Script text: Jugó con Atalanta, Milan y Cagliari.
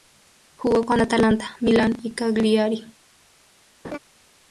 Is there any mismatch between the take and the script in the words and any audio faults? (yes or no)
yes